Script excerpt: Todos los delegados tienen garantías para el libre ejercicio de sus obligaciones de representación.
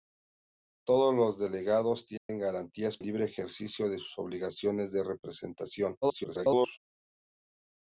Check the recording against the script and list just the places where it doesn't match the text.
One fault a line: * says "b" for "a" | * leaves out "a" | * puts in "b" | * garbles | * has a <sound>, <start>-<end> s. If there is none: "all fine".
* has a dropout, 2.2-2.3 s
* leaves out "para"
* garbles